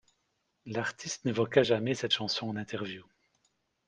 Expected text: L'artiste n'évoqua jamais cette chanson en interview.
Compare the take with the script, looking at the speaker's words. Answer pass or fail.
pass